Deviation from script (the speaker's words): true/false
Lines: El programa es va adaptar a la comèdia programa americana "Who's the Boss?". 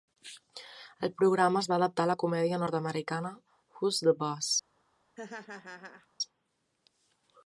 true